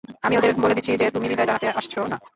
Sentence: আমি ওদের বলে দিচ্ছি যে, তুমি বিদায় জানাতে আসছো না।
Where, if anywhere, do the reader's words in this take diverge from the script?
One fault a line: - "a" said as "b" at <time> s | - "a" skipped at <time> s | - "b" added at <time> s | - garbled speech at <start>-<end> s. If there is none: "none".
none